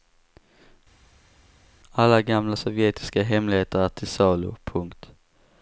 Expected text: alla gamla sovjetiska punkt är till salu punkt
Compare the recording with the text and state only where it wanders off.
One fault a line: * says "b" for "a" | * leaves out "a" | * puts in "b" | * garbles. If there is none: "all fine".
* says "hemligheter" for "punkt"